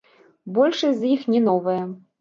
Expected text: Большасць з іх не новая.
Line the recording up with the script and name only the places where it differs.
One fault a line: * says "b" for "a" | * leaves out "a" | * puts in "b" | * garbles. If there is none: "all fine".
all fine